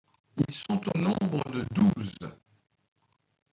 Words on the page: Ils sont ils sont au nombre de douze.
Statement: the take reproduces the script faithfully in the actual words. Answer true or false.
false